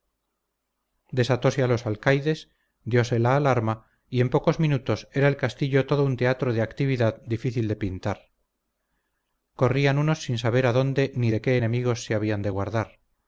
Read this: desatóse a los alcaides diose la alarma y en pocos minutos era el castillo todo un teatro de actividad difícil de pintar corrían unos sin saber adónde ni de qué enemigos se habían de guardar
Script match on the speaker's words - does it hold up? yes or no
yes